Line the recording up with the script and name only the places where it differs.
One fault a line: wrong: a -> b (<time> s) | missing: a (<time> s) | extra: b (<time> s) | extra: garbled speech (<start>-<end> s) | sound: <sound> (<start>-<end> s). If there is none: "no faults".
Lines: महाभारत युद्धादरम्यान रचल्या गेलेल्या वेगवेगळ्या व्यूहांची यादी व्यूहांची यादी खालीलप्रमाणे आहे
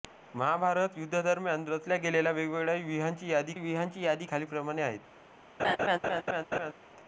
sound: laugh (5.6-6.7 s)